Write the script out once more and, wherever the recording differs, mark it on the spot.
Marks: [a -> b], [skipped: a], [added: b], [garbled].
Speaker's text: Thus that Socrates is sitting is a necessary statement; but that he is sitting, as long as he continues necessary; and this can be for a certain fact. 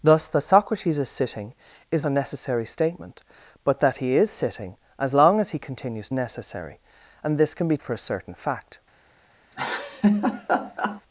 Thus that Socrates is sitting is a necessary statement; but that he is sitting, as long as he continues necessary; and this can be for a certain fact.